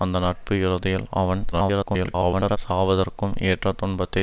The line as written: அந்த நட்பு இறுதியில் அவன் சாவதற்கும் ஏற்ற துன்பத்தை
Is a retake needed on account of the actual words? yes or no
yes